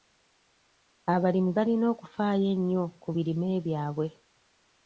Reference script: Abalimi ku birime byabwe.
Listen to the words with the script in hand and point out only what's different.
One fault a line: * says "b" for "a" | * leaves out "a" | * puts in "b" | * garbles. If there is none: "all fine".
* puts in "balina okufaayo ennyo"